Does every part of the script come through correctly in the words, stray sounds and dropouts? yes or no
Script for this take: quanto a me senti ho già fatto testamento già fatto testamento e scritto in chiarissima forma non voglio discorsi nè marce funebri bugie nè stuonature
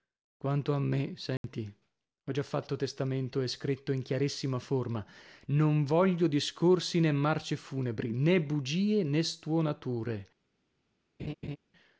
no